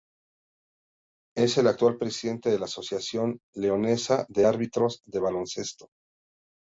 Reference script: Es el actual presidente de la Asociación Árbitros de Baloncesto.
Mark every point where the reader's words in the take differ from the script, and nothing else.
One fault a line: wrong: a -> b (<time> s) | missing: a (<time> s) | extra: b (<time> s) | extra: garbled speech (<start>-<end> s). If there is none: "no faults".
extra: Leonesa de (3.5 s)